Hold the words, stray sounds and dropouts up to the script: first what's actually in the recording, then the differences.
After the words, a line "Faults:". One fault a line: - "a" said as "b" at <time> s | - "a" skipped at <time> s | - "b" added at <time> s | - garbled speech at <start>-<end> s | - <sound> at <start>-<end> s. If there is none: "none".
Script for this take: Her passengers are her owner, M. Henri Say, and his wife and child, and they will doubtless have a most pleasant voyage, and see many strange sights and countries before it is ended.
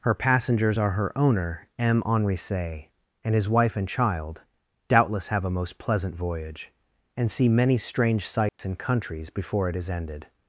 Her passengers are her owner, M. Henri Say, and his wife and child, doubtless have a most pleasant voyage, and see many strange sights and countries before it is ended.
Faults:
- "and they will" skipped at 4.4 s
- dropout at 8.5-8.6 s